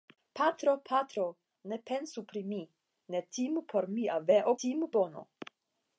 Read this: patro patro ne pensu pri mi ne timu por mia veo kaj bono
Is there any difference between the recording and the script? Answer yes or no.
yes